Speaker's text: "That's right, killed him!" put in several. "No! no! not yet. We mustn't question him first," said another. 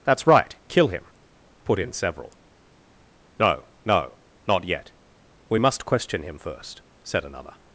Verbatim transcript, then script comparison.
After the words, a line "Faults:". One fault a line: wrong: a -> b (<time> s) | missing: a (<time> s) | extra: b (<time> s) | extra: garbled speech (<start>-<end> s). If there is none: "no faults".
"That's right, kill him!" put in several. "No! no! not yet. We must question him first," said another.
Faults:
wrong: killed -> kill (0.7 s)
wrong: mustn't -> must (5.6 s)